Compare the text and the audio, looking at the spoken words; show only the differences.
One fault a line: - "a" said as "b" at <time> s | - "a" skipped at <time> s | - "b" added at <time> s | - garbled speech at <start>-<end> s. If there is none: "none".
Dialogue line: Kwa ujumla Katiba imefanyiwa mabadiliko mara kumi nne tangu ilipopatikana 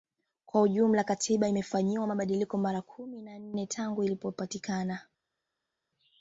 - "na" added at 3.2 s